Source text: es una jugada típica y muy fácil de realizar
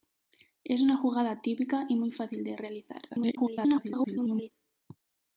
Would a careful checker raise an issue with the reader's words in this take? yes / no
yes